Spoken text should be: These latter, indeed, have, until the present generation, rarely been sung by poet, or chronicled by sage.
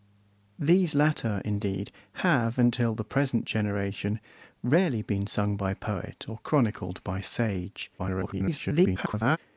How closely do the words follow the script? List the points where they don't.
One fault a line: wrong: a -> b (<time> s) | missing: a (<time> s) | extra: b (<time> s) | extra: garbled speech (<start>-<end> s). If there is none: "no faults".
extra: garbled speech (8.0-9.4 s)